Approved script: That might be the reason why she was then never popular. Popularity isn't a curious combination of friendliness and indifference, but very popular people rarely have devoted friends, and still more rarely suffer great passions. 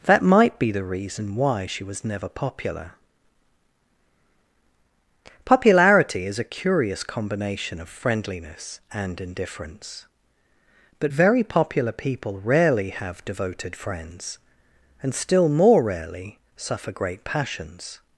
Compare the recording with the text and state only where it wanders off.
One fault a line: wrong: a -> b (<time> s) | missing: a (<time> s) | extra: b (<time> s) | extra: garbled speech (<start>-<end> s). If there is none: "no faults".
missing: then (2.0 s)
wrong: isn't -> is (6.2 s)